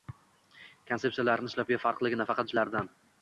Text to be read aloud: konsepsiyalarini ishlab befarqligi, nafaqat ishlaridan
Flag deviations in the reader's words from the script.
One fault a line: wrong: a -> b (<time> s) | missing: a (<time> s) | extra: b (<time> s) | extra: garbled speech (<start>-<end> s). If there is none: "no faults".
no faults